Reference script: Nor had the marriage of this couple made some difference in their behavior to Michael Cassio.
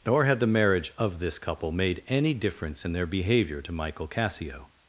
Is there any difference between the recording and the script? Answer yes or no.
yes